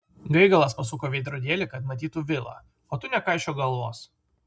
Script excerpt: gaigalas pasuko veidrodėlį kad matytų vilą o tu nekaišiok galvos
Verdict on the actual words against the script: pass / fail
pass